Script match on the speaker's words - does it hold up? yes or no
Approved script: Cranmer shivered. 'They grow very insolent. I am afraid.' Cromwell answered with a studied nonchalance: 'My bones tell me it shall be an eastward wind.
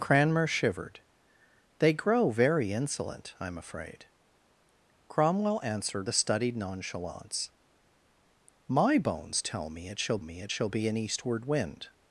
no